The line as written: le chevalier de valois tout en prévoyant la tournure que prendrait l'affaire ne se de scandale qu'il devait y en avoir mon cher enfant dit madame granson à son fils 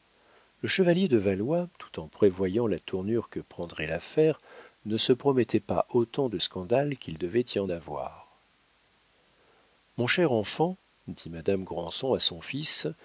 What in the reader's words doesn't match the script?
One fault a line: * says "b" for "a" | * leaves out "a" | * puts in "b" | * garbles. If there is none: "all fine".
* puts in "promettait pas autant"